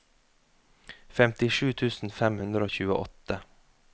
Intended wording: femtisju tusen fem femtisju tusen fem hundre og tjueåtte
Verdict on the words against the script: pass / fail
fail